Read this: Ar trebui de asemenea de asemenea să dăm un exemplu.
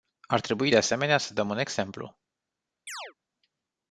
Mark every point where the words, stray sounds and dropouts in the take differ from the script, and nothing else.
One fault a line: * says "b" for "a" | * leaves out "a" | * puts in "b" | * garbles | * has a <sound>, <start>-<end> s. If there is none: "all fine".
* leaves out "de asemenea"
* has a chirp, 2.9-3.1 s